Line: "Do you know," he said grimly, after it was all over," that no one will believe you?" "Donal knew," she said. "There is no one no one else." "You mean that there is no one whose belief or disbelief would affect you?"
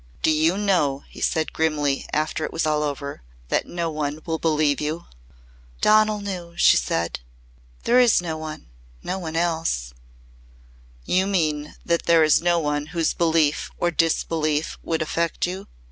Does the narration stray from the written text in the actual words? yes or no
no